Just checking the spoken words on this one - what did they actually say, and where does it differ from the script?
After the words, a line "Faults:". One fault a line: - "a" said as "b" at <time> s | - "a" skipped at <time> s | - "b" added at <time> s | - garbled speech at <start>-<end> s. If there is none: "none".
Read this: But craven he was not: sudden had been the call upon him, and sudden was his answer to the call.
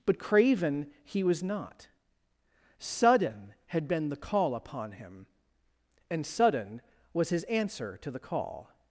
But craven he was not: sudden had been the call upon him, and sudden was his answer to the call.
Faults:
none